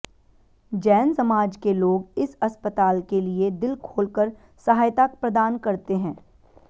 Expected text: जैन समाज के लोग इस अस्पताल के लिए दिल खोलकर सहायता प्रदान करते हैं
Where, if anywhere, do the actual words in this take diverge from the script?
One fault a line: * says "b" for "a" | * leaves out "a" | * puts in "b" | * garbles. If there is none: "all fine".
all fine